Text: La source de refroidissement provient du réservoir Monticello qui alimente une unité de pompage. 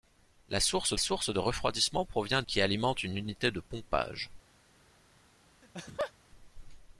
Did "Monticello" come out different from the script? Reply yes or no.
yes